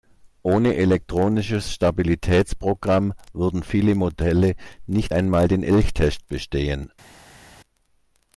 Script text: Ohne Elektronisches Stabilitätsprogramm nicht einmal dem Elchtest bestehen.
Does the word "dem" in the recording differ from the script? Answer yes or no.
yes